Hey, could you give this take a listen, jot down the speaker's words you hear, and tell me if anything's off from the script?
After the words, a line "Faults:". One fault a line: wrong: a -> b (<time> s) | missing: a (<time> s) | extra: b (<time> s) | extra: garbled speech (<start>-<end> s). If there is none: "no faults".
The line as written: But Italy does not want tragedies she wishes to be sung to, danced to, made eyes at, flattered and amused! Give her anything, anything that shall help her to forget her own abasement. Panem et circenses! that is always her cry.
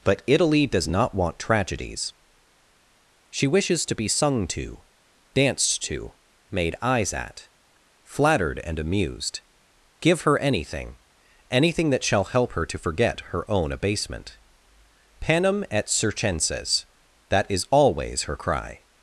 But Italy does not want tragedies she wishes to be sung to, danced to, made eyes at, flattered and amused! Give her anything, anything that shall help her to forget her own abasement. Panem et circenses! that is always her cry.
Faults:
no faults